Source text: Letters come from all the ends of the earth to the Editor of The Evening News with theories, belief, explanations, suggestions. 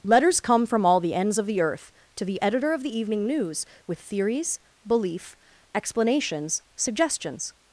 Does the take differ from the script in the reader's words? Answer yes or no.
no